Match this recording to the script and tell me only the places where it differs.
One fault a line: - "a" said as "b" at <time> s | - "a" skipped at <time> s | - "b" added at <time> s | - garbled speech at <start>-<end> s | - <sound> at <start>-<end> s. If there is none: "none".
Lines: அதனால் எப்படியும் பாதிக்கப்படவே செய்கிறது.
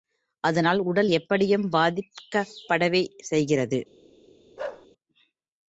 - "உடல்" added at 0.8 s
- bark at 4.6-4.9 s